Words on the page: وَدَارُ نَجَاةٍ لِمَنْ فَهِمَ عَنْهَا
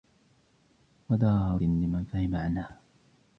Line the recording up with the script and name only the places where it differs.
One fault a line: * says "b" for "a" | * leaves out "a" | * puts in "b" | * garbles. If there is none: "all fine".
* leaves out "نَجَاةٍ"